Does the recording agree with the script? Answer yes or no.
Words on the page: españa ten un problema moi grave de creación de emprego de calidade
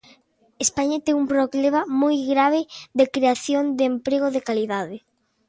yes